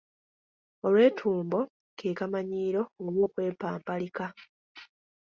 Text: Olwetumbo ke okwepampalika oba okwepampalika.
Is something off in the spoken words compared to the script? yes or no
yes